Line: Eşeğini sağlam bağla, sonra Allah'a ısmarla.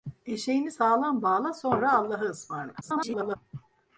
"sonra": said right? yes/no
yes